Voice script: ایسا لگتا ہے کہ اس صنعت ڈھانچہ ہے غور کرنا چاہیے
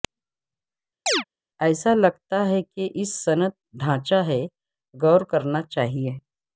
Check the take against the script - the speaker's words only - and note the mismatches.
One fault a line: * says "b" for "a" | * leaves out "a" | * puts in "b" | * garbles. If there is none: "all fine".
all fine